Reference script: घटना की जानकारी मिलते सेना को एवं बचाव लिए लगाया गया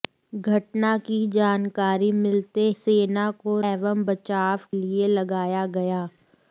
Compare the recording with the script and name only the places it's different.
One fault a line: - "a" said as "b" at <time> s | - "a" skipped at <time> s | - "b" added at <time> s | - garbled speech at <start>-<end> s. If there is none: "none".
none